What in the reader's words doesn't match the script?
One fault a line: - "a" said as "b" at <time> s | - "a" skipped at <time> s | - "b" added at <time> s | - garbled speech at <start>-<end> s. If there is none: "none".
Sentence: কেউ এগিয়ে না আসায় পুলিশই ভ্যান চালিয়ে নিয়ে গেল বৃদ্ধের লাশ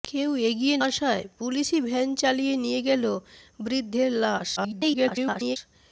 - "না" skipped at 0.8 s
- garbled speech at 4.6-5.6 s